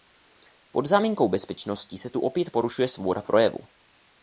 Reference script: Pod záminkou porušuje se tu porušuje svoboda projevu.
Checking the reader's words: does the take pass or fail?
fail